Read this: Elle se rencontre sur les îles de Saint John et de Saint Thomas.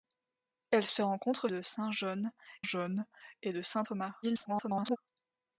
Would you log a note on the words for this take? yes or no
yes